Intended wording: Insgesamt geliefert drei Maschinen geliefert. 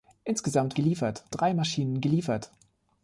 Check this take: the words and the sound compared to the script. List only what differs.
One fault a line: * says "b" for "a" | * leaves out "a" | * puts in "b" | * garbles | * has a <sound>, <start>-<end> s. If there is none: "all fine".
all fine